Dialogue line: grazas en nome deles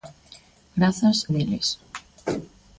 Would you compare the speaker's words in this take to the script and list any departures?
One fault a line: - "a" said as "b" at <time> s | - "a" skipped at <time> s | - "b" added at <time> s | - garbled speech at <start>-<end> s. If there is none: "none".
- "en nome" skipped at 1.3 s